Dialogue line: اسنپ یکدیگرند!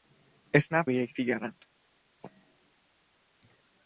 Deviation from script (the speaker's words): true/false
false